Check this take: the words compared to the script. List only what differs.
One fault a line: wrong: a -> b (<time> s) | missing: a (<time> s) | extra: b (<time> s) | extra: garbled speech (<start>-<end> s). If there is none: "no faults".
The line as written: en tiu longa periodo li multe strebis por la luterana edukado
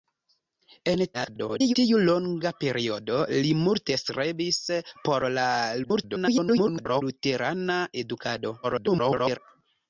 extra: garbled speech (1.1-1.8 s)
extra: garbled speech (5.8-7.0 s)
extra: garbled speech (8.6-9.4 s)